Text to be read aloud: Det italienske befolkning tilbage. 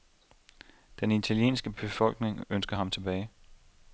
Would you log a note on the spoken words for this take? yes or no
yes